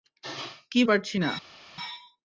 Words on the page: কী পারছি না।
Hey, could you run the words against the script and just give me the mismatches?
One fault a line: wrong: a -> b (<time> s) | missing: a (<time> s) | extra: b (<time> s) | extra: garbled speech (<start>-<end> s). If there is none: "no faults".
no faults